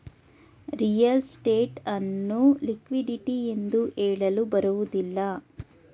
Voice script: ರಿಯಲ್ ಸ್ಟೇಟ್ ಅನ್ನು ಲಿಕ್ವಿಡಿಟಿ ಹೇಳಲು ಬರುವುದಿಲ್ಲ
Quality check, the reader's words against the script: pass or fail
fail